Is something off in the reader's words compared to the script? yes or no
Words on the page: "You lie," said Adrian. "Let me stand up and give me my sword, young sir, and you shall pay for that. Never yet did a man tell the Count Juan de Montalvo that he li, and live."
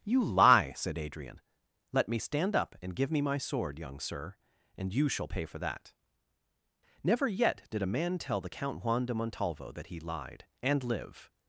yes